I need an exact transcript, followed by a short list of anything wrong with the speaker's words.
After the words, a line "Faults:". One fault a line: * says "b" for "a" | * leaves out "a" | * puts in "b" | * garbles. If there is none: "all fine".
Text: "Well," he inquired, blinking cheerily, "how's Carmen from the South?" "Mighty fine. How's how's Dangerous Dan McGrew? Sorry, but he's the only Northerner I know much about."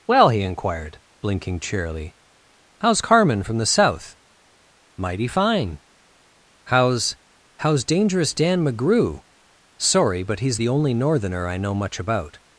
"Well," he inquired, blinking cheerily, "how's Carmen from the South?" "Mighty fine. How's how's Dangerous Dan McGrew? Sorry, but he's the only Northerner I know much about."
Faults:
all fine